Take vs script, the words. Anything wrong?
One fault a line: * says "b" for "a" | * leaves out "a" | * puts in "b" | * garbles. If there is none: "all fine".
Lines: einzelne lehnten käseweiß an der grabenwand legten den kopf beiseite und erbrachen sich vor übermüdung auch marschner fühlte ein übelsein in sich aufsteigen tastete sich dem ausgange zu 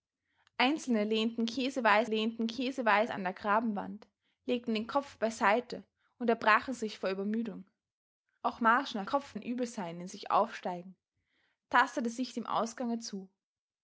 * puts in "lehnten käseweiß"
* says "kopf" for "fühlte"